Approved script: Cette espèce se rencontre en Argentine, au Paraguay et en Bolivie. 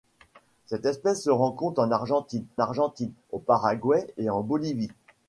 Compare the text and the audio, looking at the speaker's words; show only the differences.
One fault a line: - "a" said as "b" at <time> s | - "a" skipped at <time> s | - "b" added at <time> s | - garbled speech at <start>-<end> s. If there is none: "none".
- "Argentine" added at 2.6 s